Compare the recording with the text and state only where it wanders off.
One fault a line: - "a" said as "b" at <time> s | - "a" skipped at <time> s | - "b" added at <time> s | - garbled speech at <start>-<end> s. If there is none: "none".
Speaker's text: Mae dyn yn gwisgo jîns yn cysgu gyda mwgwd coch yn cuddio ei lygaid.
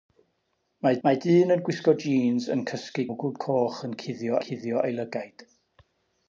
- "mae" added at 1.1 s
- "gyda" skipped at 3.1 s
- "cuddio" added at 4.5 s